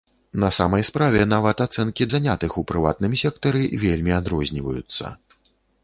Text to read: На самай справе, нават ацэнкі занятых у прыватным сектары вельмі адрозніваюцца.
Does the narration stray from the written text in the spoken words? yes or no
no